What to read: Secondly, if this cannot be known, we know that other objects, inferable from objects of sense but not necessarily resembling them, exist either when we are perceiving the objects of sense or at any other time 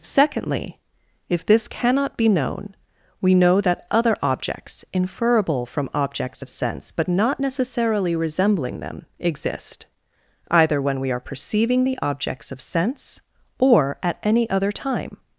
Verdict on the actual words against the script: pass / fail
pass